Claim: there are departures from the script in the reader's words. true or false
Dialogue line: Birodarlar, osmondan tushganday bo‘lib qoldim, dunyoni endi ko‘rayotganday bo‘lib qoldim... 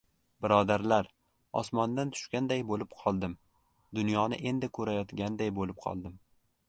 false